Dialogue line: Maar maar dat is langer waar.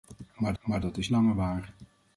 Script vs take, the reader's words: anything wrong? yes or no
no